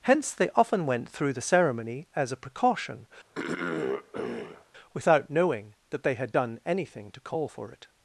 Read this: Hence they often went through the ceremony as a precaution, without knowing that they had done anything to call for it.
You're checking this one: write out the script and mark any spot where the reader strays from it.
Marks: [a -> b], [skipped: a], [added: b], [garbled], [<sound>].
Hence they often went through the ceremony as a precaution, [throat clearing] without knowing that they had done anything to call for it.